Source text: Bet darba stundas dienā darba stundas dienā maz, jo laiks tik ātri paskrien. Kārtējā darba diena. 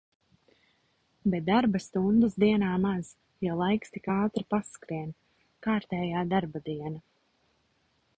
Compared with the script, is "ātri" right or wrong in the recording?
right